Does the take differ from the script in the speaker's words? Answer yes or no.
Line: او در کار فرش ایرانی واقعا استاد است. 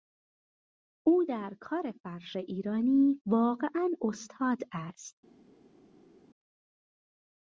no